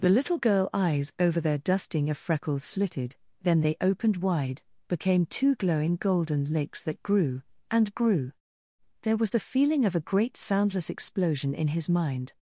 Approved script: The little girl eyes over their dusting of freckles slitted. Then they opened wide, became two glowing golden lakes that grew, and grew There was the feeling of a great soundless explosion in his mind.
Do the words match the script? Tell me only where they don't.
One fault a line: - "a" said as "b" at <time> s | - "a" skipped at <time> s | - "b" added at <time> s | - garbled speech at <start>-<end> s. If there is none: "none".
none